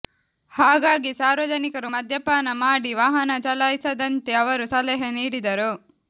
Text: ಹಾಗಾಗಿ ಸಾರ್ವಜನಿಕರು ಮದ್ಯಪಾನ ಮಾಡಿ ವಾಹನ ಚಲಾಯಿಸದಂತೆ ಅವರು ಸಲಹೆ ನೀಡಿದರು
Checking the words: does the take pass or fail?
pass